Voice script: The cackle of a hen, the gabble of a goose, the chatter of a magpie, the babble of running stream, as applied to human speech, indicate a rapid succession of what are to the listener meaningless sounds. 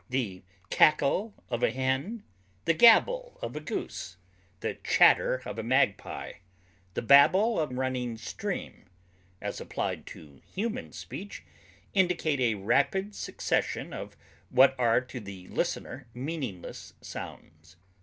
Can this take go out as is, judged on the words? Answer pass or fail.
pass